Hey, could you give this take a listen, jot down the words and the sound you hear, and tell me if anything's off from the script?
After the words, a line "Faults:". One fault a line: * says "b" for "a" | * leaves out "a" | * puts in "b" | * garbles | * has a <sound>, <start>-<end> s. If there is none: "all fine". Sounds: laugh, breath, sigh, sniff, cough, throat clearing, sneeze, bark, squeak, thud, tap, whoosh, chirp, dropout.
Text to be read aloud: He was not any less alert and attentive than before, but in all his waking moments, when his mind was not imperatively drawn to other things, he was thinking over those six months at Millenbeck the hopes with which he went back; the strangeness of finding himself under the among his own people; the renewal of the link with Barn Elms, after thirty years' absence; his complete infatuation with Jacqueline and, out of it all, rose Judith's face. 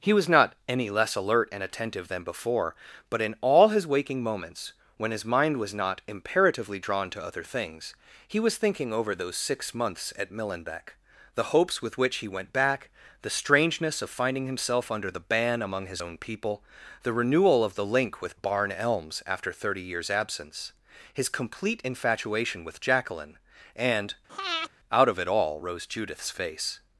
He was not any less alert and attentive than before, but in all his waking moments, when his mind was not imperatively drawn to other things, he was thinking over those six months at Millenbeck the hopes with which he went back; the strangeness of finding himself under the ban among his own people; the renewal of the link with Barn Elms, after thirty years' absence; his complete infatuation with Jacqueline and, out of it all, rose Judith's face.
Faults:
* puts in "ban"
* has a breath, 24.3-24.7 s